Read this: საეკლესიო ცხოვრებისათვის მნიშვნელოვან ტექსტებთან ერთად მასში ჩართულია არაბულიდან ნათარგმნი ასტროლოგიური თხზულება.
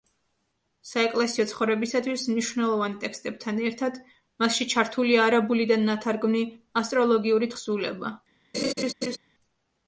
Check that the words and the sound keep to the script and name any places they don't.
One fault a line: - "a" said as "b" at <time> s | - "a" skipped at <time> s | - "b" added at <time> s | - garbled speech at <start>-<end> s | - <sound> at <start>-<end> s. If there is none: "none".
- laugh at 8.5-9.2 s